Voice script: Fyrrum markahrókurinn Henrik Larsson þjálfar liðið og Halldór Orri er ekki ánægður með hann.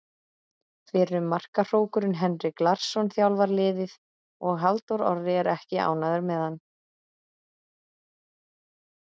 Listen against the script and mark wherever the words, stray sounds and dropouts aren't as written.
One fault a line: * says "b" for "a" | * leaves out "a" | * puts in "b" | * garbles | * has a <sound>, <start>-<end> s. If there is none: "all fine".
all fine